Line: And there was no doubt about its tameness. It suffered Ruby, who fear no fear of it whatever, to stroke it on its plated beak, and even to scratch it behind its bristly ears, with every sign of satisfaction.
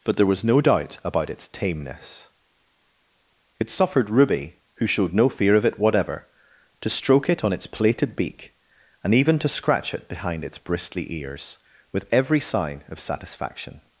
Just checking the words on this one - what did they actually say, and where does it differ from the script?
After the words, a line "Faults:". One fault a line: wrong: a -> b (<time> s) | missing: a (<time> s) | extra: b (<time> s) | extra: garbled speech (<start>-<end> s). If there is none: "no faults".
But there was no doubt about its tameness. It suffered Ruby, who showed no fear of it whatever, to stroke it on its plated beak, and even to scratch it behind its bristly ears, with every sign of satisfaction.
Faults:
wrong: And -> But (0.0 s)
wrong: fear -> showed (4.9 s)